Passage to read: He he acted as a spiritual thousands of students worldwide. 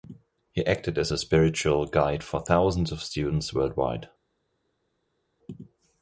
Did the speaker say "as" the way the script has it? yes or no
yes